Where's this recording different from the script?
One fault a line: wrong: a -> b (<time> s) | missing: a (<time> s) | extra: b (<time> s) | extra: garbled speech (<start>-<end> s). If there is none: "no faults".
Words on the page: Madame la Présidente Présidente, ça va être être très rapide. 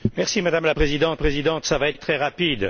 no faults